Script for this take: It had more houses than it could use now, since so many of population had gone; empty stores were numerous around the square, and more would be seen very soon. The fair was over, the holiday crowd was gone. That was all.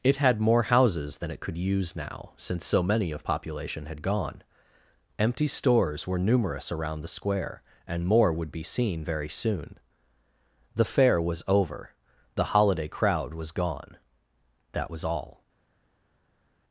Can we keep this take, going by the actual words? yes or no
yes